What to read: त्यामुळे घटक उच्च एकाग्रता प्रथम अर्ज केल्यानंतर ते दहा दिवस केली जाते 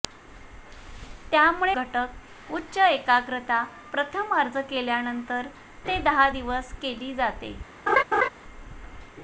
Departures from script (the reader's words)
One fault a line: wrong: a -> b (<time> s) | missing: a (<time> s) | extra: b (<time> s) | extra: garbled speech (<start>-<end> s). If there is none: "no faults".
no faults